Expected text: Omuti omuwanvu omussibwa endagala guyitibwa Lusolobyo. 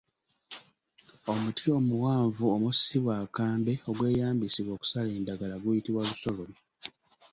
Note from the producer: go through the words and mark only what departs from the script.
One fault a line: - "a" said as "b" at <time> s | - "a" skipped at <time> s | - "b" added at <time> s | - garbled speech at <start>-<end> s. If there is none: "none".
- "akambe ogweyambisibwa okusala" added at 3.2 s